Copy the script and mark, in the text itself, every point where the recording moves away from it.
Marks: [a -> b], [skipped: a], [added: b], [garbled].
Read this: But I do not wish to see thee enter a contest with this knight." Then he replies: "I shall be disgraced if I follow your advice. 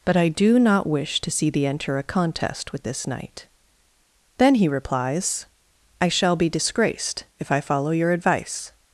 But I do not wish to see thee enter a contest with this knight." Then he replies: "I shall be disgraced if I follow your advice.